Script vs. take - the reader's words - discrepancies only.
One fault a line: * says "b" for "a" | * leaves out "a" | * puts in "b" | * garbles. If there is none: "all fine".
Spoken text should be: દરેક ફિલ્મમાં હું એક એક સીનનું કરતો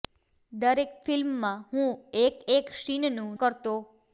all fine